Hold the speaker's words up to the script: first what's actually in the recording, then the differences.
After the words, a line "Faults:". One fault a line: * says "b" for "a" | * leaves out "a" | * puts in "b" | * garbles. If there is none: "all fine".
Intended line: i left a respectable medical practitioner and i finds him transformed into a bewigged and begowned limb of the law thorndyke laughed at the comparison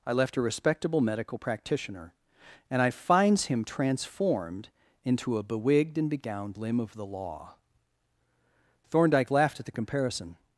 i left a respectable medical practitioner and i finds him transformed into a bewigged and begowned limb of the law thorndyke laughed at the comparison
Faults:
all fine